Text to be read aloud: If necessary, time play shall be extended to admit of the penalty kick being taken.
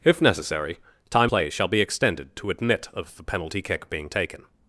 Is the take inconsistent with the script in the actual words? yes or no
no